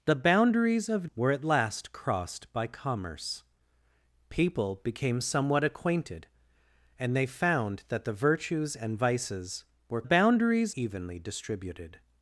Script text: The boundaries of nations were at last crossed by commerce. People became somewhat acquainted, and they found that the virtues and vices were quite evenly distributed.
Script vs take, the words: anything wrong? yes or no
yes